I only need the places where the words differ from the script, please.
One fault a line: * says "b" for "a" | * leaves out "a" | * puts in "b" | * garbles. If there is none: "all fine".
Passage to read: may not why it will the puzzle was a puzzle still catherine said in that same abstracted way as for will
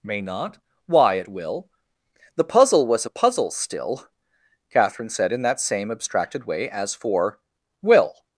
all fine